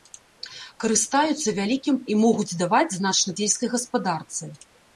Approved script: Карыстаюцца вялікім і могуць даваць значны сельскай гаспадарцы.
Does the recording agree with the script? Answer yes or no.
yes